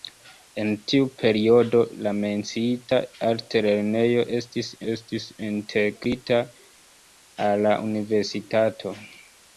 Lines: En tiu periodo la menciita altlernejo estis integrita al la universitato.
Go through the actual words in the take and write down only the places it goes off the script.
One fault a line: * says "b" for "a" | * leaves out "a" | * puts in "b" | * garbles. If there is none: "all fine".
* puts in "estis"